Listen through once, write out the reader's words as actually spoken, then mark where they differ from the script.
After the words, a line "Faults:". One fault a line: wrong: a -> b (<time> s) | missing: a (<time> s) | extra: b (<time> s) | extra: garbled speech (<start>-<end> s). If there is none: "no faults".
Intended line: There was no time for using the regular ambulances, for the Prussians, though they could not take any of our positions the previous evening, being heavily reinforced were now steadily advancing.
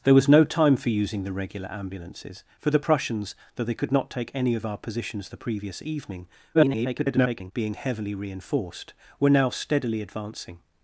There was no time for using the regular ambulances, for the Prussians, though they could not take any of our positions the previous evening, [garbled] being heavily reinforced were now steadily advancing.
Faults:
extra: garbled speech (6.5-7.5 s)